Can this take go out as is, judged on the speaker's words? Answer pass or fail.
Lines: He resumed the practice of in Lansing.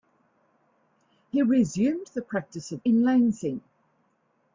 pass